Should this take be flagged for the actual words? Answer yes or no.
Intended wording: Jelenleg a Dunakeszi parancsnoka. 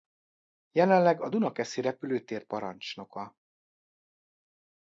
yes